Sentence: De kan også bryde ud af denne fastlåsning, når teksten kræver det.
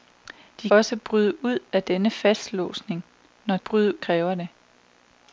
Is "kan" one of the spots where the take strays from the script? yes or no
yes